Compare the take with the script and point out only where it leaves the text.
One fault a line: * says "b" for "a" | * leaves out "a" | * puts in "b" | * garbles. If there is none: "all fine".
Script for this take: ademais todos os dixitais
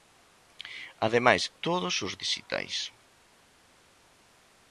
all fine